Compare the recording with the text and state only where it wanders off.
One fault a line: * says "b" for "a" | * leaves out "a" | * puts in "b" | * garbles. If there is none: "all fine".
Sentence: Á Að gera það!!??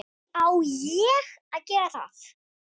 * puts in "ÉG"